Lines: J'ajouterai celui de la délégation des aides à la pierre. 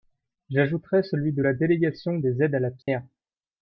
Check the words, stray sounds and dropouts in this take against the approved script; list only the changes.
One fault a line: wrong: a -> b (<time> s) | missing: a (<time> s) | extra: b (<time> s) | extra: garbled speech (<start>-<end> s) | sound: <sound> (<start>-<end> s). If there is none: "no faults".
sound: dropout (2.8-2.9 s)